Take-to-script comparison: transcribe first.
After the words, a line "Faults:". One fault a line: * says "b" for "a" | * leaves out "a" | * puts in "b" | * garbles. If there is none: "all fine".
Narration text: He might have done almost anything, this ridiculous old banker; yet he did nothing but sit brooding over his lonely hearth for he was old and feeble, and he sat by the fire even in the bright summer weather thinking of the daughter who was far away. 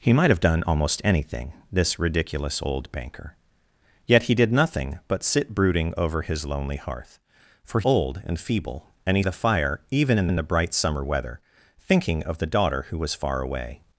He might have done almost anything, this ridiculous old banker; yet he did nothing but sit brooding over his lonely hearth for old and feeble, and he the fire even in in the bright summer weather thinking of the daughter who was far away.
Faults:
* leaves out "he was"
* leaves out "sat by"
* puts in "in"